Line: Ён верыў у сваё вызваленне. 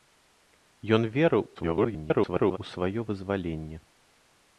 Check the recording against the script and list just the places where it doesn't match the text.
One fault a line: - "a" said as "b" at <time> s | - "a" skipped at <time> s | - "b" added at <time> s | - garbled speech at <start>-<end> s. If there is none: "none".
- garbled speech at 1.5-2.6 s